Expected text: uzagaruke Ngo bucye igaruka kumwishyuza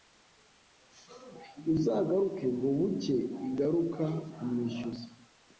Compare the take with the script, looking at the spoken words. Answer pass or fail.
pass